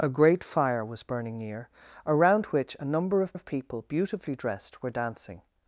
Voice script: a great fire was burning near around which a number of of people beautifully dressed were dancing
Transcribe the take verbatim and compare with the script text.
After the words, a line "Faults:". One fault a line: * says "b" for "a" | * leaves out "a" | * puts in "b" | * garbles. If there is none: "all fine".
a great fire was burning near around which a number of of people beautifully dressed were dancing
Faults:
all fine